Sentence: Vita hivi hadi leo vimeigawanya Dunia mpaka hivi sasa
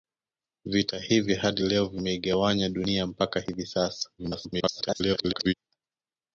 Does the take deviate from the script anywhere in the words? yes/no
yes